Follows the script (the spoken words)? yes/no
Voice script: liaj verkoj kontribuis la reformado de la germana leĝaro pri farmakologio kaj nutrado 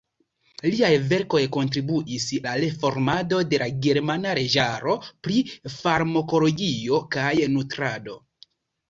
yes